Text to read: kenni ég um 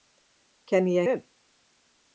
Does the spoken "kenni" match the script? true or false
true